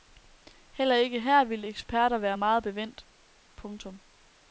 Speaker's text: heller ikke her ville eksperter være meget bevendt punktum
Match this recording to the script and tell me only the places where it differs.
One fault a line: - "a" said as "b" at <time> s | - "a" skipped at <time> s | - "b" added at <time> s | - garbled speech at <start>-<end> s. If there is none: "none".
none